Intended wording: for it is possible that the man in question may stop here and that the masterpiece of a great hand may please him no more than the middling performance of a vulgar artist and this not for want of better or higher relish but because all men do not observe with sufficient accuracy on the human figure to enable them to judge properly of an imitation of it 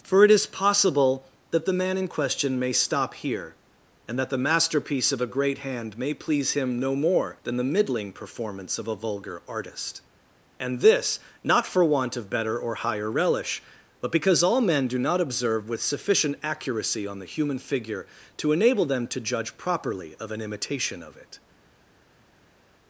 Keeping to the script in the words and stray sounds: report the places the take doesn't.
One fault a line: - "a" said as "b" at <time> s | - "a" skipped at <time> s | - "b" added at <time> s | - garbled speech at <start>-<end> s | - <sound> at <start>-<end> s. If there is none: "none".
none